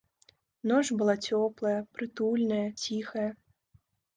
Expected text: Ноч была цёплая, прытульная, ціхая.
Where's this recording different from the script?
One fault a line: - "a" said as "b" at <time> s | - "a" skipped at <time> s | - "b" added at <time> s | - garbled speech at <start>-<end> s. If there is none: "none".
none